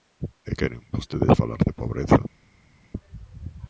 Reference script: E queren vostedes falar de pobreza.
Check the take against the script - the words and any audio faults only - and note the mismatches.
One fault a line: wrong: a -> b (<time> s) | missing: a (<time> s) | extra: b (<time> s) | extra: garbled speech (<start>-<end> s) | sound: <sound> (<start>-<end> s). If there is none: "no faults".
no faults